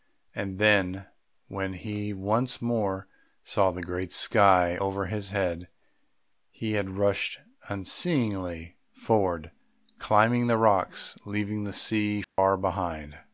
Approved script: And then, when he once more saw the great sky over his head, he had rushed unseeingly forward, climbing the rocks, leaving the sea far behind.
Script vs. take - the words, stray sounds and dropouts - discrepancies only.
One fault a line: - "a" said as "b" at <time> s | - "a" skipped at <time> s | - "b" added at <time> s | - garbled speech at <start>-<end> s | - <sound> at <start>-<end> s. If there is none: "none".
- dropout at 12.2-12.4 s